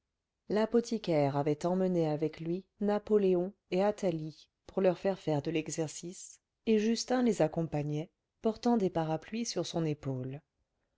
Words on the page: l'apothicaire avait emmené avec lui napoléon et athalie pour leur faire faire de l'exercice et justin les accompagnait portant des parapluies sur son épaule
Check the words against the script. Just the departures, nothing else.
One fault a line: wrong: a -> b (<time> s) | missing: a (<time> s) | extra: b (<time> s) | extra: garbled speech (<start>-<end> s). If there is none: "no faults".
no faults